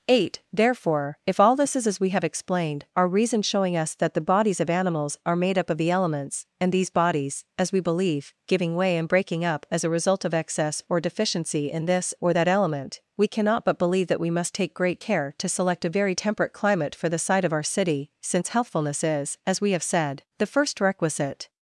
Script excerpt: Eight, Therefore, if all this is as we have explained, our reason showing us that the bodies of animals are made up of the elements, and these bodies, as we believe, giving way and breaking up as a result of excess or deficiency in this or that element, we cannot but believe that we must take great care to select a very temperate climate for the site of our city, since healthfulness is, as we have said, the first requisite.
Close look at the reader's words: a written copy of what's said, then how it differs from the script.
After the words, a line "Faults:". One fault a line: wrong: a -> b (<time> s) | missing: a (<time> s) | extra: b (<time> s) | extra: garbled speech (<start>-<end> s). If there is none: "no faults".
Eight, Therefore, if all this is as we have explained, our reason showing us that the bodies of animals are made up of the elements, and these bodies, as we believe, giving way and breaking up as a result of excess or deficiency in this or that element, we cannot but believe that we must take great care to select a very temperate climate for the site of our city, since healthfulness is, as we have said, the first requisite.
Faults:
no faults